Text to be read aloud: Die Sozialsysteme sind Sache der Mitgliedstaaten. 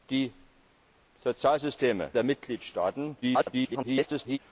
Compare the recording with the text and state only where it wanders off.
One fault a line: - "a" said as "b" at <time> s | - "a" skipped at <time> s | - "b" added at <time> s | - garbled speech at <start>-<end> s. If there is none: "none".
- "sind Sache" skipped at 2.1 s
- garbled speech at 3.2-4.4 s